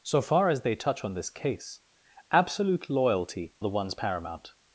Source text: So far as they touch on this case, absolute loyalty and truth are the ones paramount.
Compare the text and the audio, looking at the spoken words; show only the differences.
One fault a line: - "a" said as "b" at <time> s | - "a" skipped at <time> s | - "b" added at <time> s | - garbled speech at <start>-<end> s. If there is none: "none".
- "and truth are" skipped at 3.5 s